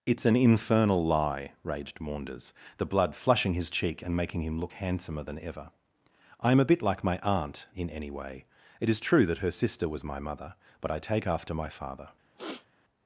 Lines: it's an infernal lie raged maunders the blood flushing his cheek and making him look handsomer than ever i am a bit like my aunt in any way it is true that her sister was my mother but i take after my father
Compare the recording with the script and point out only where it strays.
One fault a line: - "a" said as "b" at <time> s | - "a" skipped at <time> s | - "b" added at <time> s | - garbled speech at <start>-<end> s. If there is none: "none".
none